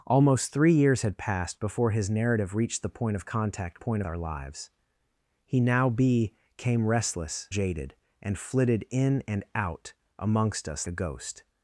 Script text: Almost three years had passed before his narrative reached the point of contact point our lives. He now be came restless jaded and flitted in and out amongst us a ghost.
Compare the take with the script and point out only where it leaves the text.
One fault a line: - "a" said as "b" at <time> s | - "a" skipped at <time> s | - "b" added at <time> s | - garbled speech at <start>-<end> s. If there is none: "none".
none